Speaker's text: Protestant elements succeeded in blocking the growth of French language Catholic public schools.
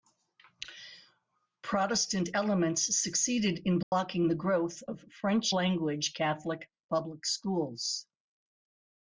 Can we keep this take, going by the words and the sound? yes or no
no